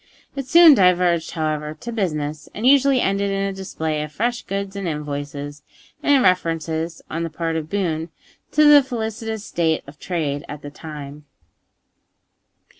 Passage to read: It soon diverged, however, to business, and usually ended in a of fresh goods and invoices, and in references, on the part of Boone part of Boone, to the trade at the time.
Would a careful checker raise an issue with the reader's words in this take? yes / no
yes